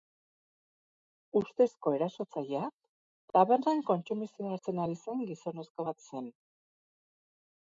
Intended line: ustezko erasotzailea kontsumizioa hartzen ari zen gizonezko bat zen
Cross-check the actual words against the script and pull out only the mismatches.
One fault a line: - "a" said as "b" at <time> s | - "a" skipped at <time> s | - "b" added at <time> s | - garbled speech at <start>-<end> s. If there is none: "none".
- "tabernan" added at 3.4 s